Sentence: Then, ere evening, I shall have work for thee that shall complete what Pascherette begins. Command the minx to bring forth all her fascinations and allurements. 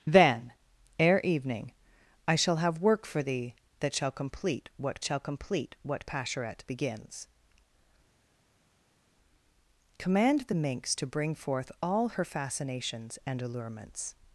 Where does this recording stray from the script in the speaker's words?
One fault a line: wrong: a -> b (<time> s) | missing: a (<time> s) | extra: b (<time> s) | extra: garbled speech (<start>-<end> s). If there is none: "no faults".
extra: shall complete what (5.0 s)